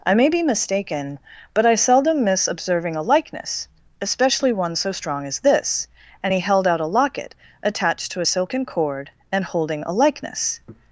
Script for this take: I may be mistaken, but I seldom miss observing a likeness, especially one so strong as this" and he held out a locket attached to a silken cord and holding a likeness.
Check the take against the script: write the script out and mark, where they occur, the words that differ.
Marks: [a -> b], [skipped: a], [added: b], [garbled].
I may be mistaken, but I seldom miss observing a likeness, especially one so strong as this" and he held out a locket attached to a silken cord and holding a likeness.